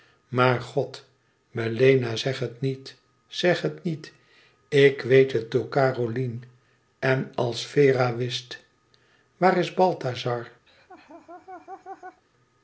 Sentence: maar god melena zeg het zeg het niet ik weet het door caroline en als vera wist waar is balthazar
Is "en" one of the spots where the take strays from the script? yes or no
no